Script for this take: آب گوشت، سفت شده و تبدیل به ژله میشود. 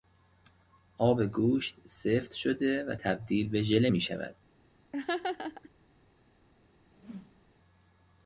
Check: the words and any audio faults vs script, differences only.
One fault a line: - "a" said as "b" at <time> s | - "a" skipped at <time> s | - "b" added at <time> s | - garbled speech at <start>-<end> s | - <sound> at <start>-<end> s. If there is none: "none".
- laugh at 4.9-5.7 s
- whoosh at 6.9-7.5 s